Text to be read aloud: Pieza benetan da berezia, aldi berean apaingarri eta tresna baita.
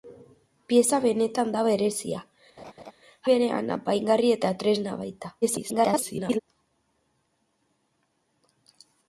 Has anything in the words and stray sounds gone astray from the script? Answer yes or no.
yes